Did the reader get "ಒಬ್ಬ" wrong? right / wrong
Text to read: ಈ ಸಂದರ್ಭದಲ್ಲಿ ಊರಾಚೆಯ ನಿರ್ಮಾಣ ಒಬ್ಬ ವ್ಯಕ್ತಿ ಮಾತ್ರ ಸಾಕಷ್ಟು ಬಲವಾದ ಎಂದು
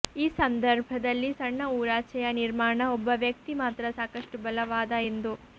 right